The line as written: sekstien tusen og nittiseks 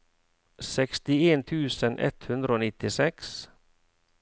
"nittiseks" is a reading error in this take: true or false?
false